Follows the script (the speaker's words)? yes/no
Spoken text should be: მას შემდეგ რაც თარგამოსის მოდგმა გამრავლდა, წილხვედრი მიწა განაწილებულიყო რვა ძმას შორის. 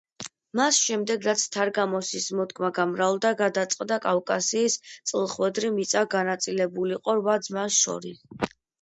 no